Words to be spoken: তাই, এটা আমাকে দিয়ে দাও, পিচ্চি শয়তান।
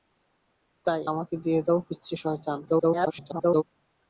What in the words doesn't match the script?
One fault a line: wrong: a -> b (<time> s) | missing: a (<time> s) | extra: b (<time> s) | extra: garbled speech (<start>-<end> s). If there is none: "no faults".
missing: এটা (1.0 s)
extra: garbled speech (2.7-3.6 s)